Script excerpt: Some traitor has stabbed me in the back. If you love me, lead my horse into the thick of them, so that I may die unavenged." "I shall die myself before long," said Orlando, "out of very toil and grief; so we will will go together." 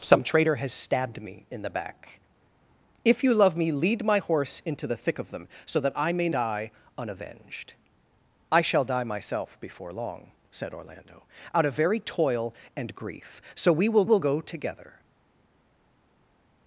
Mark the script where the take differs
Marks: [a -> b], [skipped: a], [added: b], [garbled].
Some traitor has stabbed me in the back. If you love me, lead my horse into the thick of them, so that I may die unavenged." "I shall die myself before long," said Orlando, "out of very toil and grief; so we will will go together."